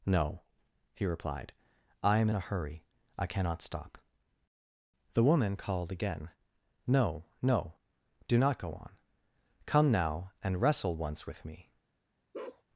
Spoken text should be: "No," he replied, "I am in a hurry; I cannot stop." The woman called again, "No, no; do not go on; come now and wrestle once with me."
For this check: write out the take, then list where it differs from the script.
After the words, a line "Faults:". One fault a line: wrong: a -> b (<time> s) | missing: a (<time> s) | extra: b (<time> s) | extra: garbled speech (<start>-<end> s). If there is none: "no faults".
"No," he replied, "I am in a hurry; I cannot stop." The woman called again, "No, no; do not go on; come now and wrestle once with me."
Faults:
no faults